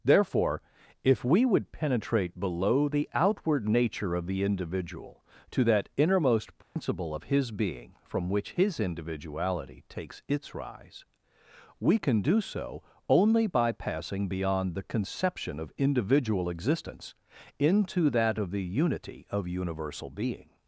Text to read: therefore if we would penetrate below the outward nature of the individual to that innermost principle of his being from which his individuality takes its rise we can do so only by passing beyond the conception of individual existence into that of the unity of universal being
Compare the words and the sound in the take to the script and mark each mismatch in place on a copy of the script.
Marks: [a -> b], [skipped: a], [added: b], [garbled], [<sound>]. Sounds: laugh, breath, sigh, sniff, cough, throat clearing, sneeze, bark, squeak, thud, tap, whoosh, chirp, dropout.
therefore if we would penetrate below the outward nature of the individual to that innermost principle [dropout] of his being from which his individuality takes its rise we can do so only by passing beyond the conception of individual existence into that of the unity of universal being